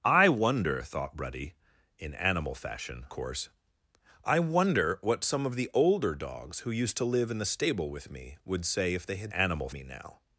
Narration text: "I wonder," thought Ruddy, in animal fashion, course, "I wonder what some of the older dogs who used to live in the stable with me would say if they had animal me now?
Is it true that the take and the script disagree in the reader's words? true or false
false